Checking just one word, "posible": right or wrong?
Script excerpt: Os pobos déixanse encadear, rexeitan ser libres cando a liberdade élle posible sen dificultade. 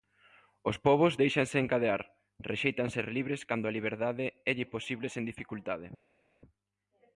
right